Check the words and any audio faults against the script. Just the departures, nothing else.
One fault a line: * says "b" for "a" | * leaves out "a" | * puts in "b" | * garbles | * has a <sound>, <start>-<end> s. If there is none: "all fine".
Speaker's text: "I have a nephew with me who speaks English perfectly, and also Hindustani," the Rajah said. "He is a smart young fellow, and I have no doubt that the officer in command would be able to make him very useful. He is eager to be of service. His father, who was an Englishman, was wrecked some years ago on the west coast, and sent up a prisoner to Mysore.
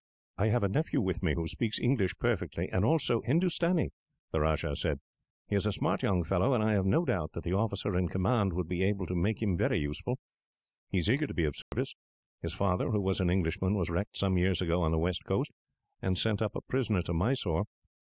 * has a dropout, 11.6-11.7 s